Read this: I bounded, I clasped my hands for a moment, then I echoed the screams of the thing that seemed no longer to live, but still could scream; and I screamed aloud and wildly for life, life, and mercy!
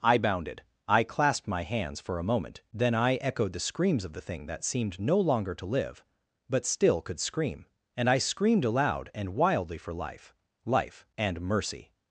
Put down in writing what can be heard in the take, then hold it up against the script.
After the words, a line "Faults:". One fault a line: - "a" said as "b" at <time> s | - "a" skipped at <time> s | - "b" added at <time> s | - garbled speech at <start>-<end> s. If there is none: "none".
I bounded, I clasped my hands for a moment, then I echoed the screams of the thing that seemed no longer to live, but still could scream; and I screamed aloud and wildly for life, life, and mercy!
Faults:
none